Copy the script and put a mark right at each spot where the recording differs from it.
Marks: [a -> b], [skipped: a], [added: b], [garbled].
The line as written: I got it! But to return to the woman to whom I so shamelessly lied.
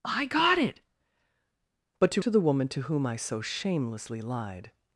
I got it! But to [skipped: return] to the woman to whom I so shamelessly lied.